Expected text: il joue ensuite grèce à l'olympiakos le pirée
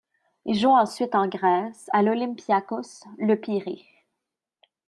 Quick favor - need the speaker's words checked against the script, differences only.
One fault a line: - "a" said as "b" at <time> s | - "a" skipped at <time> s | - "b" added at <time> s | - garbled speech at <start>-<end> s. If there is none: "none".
- "en" added at 1.1 s